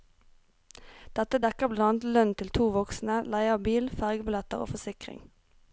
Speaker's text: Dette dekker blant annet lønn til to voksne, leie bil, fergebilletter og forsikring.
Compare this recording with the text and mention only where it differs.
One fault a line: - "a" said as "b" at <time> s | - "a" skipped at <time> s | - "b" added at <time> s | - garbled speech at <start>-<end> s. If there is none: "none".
- "av" added at 3.6 s